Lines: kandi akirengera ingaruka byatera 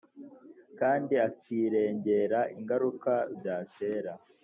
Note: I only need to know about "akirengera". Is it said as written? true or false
true